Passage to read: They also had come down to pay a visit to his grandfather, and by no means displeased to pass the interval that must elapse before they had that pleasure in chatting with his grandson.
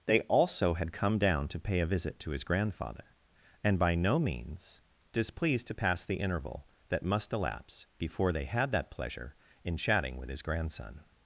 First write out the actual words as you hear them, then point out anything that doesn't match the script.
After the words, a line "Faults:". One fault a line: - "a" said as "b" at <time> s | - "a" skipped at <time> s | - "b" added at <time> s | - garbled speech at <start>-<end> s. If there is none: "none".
They also had come down to pay a visit to his grandfather, and by no means displeased to pass the interval that must elapse before they had that pleasure in chatting with his grandson.
Faults:
none